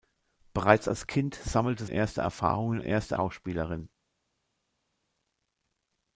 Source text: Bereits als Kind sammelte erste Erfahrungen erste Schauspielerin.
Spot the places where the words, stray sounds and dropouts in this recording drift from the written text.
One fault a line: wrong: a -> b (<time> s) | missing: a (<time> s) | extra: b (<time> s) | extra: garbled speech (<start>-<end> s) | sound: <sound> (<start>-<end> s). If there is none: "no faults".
no faults